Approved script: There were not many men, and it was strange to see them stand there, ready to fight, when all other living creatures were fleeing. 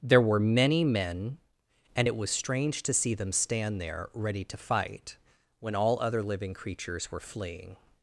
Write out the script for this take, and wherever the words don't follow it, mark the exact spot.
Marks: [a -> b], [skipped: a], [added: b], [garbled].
There were [skipped: not] many men, and it was strange to see them stand there, ready to fight, when all other living creatures were fleeing.